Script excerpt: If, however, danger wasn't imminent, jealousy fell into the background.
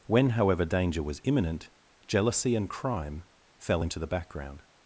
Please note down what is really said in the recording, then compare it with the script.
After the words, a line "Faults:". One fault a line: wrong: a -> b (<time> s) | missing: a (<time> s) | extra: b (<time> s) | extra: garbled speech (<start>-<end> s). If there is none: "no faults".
When, however, danger was imminent, jealousy and crime fell into the background.
Faults:
wrong: If -> When (0.1 s)
wrong: wasn't -> was (1.0 s)
extra: and crime (2.5 s)